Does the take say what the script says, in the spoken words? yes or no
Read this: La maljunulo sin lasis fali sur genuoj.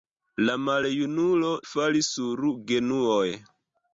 no